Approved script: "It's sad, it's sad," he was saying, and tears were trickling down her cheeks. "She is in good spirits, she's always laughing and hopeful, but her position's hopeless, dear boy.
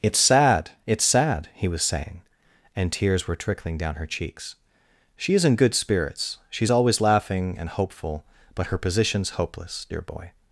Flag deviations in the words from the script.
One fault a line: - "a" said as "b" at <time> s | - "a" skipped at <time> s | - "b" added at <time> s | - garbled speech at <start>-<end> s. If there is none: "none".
none